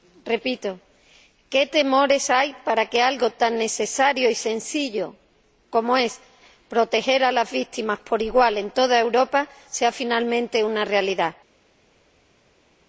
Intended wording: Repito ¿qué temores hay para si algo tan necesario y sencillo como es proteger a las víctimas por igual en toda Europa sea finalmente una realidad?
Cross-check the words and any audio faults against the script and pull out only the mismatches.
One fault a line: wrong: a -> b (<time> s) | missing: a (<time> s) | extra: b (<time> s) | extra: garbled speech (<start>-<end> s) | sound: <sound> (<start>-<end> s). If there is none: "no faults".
wrong: si -> que (2.9 s)